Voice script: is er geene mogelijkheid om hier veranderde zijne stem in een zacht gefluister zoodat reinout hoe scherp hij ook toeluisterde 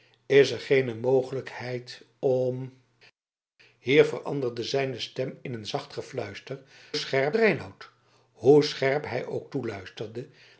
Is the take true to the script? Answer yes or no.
no